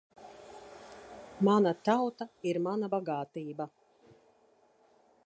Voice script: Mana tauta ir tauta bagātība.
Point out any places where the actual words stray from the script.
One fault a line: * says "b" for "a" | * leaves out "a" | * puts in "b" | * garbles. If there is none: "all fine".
* says "mana" for "tauta"